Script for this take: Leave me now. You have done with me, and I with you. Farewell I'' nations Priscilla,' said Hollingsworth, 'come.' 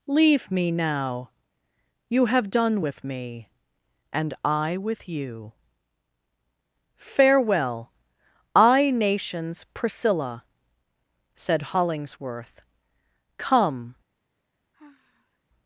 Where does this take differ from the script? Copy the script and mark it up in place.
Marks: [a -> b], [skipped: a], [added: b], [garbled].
Leave me now. You have done with me, and I with you. Farewell I'' nations Priscilla,' said Hollingsworth, 'come.'